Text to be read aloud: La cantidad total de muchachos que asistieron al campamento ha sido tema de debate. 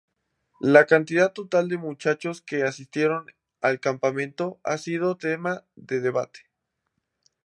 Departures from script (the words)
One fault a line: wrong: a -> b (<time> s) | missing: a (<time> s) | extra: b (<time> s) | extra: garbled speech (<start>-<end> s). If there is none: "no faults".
no faults